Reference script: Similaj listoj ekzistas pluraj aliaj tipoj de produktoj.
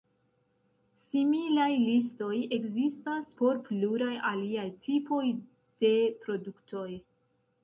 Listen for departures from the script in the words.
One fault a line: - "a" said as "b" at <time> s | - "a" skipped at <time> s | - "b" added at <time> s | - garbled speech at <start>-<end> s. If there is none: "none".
- "por" added at 3.4 s